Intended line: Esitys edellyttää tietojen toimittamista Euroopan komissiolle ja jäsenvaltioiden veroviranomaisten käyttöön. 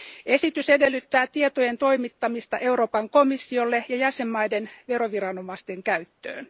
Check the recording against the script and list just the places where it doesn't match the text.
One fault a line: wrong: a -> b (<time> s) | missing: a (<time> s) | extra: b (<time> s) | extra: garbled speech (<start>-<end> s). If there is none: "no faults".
no faults